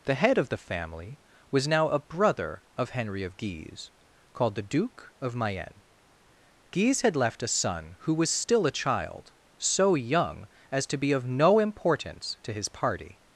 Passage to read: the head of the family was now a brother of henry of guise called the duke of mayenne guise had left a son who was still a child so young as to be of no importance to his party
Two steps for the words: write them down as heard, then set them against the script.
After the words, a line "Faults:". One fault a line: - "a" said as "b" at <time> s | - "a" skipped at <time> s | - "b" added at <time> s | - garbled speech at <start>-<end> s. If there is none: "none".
the head of the family was now a brother of henry of guise called the duke of mayenne guise had left a son who was still a child so young as to be of no importance to his party
Faults:
none